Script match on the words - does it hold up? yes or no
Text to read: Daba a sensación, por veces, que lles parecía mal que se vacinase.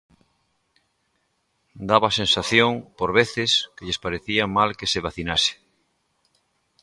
yes